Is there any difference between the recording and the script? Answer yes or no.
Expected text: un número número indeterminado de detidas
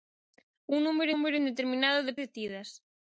no